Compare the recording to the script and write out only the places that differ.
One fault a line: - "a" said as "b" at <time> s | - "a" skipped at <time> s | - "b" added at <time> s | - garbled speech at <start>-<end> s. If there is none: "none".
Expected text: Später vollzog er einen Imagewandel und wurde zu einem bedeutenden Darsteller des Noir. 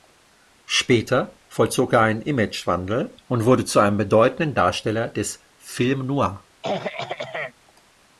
- "Film" added at 5.6 s